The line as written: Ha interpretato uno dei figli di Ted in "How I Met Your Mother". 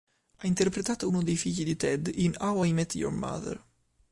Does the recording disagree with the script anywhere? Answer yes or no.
no